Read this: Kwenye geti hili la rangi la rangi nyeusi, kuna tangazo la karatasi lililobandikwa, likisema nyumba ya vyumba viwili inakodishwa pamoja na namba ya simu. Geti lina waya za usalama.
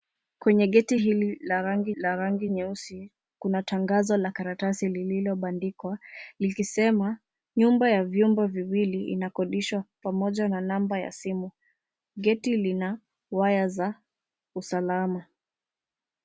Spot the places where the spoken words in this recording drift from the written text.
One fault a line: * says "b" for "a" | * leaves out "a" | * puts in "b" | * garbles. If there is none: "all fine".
all fine